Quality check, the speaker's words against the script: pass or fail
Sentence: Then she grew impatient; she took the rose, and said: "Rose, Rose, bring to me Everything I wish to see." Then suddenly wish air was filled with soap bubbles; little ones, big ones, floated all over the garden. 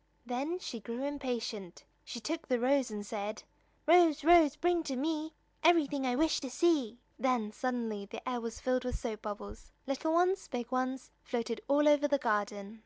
fail